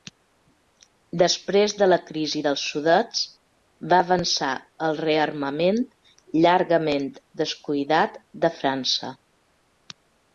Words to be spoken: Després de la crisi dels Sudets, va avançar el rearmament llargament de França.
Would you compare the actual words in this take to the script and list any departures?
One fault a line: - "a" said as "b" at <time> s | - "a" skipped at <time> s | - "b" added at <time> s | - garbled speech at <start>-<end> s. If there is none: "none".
- "descuidat" added at 7.4 s